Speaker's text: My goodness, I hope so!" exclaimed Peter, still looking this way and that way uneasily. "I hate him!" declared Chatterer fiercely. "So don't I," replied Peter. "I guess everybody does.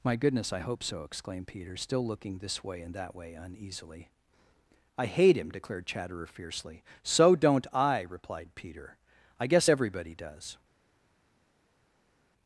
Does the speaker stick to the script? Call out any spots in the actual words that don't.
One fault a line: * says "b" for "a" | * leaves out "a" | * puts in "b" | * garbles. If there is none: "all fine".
all fine